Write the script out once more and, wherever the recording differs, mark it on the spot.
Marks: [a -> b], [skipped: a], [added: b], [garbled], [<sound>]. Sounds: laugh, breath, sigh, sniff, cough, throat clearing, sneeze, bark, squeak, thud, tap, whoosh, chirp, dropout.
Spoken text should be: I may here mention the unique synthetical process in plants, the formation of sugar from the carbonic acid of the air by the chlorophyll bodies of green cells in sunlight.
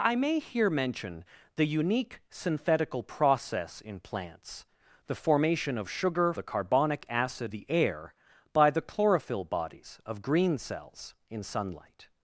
I may here mention the unique synthetical process in plants, the formation of sugar [skipped: from] the carbonic acid [skipped: of] the air by the chlorophyll bodies of green cells in sunlight.